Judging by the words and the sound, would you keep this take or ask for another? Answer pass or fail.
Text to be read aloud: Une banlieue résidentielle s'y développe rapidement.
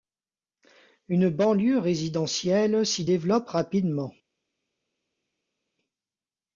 pass